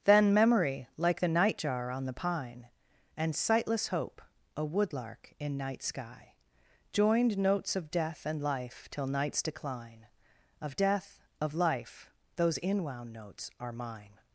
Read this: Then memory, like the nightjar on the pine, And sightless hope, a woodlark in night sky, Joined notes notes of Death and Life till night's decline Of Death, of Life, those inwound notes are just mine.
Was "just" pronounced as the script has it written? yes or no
no